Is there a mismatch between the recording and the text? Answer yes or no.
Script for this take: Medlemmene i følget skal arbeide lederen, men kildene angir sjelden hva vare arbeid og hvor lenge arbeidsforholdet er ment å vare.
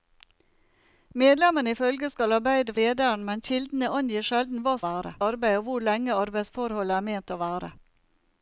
no